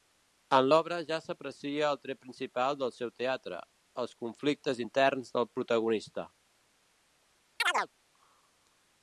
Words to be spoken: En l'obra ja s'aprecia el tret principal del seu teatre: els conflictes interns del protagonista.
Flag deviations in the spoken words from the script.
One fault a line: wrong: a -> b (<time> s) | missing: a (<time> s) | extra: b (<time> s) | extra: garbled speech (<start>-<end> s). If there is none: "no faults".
no faults